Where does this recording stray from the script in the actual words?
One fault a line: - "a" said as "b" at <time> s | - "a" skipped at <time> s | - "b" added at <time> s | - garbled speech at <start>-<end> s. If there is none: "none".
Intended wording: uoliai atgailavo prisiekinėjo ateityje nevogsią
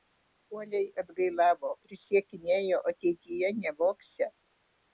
none